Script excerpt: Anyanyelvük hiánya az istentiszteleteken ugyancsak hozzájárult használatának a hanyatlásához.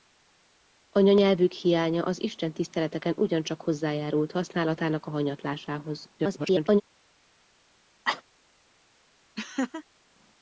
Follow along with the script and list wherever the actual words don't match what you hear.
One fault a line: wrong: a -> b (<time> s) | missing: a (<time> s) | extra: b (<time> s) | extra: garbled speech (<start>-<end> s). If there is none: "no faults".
extra: garbled speech (6.2-6.8 s)